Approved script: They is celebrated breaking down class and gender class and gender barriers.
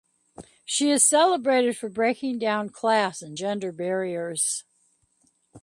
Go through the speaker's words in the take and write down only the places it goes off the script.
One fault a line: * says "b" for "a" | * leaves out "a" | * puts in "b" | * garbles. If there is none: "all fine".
* says "She" for "They"
* puts in "for"
* leaves out "class and gender"